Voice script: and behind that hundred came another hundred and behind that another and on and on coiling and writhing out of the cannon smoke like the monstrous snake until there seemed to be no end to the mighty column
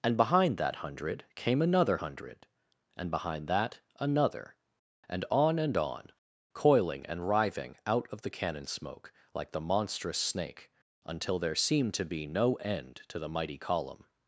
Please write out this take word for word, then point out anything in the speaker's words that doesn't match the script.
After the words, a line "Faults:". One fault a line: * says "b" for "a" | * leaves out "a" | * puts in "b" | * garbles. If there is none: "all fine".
and behind that hundred came another hundred and behind that another and on and on coiling and writhing out of the cannon smoke like the monstrous snake until there seemed to be no end to the mighty column
Faults:
all fine